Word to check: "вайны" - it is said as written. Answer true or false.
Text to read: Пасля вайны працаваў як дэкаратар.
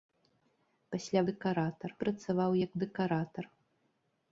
false